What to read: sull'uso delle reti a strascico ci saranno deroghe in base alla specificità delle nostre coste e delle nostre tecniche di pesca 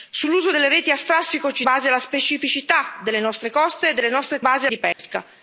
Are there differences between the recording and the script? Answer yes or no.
yes